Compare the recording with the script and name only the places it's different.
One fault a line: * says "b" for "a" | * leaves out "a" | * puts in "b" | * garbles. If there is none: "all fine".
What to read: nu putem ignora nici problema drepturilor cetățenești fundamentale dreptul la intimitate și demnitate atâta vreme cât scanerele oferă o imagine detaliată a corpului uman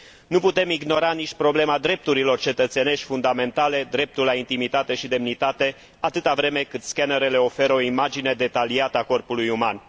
all fine